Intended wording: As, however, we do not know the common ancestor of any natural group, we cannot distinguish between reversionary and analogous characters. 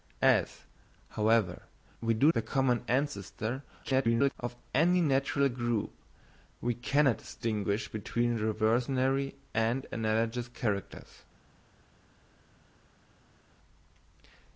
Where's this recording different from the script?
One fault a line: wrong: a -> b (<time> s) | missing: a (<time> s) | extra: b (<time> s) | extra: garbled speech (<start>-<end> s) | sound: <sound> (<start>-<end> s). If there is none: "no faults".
missing: not know (2.3 s)
extra: garbled speech (3.8-4.4 s)